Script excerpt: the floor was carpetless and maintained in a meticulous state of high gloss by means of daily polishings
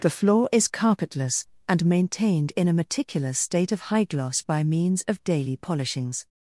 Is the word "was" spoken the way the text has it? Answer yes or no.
no